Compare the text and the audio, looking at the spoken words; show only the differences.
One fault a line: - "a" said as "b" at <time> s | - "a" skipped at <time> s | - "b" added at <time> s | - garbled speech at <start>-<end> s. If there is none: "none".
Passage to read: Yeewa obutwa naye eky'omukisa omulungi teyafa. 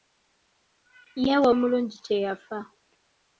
- "obutwa naye eky'omukisa" skipped at 1.5 s